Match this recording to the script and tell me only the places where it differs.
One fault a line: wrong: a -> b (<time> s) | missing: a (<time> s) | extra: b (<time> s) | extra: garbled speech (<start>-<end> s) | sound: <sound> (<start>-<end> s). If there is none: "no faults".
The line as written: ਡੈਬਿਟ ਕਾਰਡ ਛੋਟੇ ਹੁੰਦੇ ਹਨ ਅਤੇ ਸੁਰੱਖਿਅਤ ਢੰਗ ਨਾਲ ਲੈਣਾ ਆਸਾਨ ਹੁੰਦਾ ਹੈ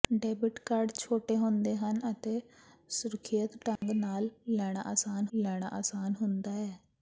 sound: dropout (3.8-3.8 s)
extra: ਲੈਣਾ ਆਸਾਨ (5.3 s)